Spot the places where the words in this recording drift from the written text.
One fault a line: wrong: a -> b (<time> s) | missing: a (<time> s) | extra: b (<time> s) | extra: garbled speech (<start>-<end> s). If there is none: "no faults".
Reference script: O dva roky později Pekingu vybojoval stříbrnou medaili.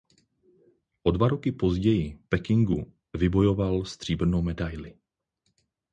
no faults